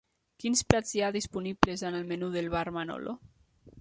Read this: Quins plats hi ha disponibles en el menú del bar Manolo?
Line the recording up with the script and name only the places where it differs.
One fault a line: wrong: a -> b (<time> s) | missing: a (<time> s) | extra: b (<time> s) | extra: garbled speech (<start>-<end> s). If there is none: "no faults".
no faults